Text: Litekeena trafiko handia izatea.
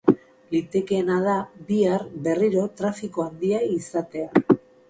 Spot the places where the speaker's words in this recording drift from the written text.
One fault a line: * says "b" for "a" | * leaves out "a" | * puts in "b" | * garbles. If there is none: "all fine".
* puts in "da bihar berriro"